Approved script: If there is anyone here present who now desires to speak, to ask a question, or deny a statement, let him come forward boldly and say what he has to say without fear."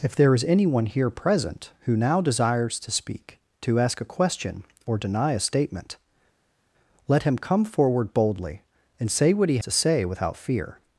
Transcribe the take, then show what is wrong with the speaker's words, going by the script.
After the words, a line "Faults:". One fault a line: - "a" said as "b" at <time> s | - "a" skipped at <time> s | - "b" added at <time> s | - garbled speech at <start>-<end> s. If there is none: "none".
If there is anyone here present who now desires to speak, to ask a question, or deny a statement, let him come forward boldly and say what he to say without fear."
Faults:
- "has" skipped at 9.6 s